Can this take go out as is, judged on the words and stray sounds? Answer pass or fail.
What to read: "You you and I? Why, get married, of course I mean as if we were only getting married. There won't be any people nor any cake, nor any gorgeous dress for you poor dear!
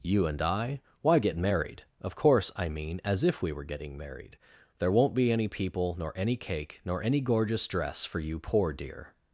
fail